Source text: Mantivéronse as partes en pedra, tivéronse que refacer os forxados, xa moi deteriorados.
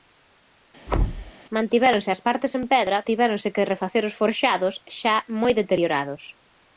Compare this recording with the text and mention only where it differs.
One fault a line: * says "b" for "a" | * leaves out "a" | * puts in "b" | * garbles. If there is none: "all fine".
all fine